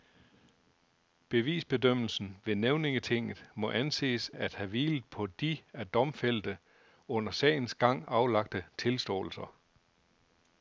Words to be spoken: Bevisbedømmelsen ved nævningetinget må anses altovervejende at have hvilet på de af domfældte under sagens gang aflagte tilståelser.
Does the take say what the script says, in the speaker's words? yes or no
no